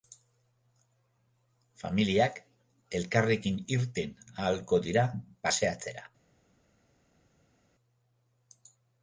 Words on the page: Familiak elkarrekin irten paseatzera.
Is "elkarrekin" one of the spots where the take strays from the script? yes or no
no